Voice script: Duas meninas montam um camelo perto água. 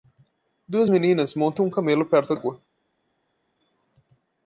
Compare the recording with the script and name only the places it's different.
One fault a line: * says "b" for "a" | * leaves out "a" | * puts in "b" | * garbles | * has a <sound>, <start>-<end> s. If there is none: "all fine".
all fine